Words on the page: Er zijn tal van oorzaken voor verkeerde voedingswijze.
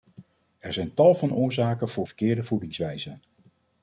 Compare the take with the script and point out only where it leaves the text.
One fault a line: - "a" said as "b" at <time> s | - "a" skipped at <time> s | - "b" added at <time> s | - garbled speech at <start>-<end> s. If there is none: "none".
none